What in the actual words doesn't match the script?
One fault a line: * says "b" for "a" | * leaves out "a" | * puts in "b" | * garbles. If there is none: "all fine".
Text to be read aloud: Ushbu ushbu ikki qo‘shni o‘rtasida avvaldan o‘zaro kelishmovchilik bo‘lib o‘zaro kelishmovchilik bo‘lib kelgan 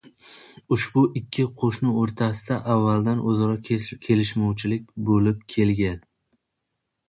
* leaves out "ushbu"
* leaves out "o‘zaro kelishmovchilik bo‘lib"